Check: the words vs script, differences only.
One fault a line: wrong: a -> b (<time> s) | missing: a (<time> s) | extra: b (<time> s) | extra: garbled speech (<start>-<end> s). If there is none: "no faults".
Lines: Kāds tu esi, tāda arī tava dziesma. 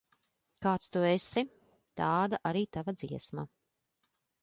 no faults